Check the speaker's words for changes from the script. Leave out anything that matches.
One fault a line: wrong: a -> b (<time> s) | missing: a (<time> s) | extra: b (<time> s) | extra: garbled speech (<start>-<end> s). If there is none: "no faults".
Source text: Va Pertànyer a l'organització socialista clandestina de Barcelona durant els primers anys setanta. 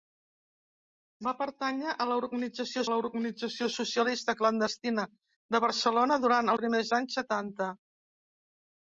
extra: l'organització (2.9 s)
missing: els (6.5 s)